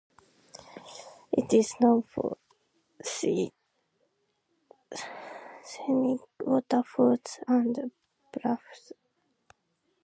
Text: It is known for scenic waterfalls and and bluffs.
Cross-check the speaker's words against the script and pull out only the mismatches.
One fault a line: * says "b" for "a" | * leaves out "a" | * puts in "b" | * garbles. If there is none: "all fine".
* leaves out "and"